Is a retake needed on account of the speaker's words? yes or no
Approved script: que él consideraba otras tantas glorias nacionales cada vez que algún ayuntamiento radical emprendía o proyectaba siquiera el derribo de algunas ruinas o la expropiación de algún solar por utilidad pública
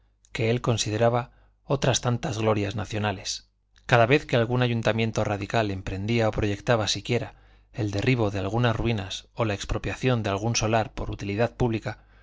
no